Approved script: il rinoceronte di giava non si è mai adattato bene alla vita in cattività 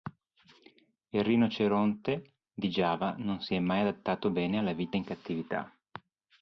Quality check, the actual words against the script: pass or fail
pass